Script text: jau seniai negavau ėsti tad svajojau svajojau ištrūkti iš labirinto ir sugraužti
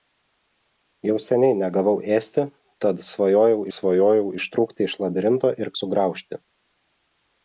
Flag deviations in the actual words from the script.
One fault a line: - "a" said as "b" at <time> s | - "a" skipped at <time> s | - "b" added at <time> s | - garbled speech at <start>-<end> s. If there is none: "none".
none